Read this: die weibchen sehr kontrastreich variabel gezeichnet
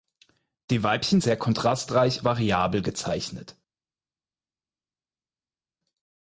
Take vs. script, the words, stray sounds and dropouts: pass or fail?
pass